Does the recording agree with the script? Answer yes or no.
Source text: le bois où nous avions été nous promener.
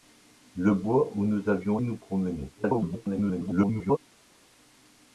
no